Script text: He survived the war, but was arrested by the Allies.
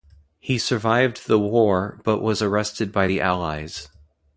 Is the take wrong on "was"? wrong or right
right